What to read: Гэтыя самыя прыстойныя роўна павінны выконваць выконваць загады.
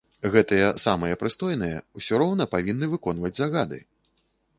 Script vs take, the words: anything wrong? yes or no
yes